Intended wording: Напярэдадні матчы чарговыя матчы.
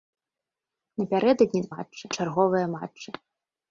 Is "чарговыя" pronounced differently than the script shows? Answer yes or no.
no